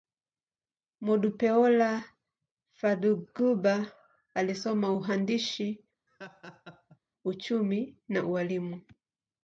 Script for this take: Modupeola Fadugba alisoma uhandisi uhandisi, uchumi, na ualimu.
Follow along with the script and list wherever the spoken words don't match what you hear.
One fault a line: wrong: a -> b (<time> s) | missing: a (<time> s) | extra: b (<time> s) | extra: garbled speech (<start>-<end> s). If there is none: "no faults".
missing: uhandisi (5.8 s)